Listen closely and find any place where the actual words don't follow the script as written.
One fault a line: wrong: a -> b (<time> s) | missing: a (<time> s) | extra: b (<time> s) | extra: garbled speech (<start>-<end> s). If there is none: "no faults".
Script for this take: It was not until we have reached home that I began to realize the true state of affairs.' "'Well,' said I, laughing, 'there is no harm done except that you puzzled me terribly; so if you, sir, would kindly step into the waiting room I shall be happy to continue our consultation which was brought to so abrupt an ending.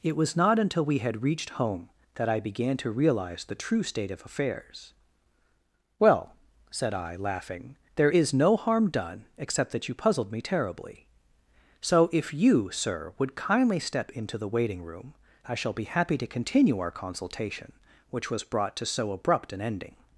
wrong: have -> had (1.0 s)